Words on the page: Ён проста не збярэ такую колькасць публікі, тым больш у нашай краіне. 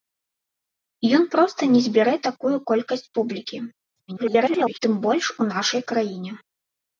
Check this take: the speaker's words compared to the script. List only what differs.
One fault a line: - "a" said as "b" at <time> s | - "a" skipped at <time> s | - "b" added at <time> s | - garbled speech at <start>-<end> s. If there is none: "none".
- garbled speech at 4.1-4.8 s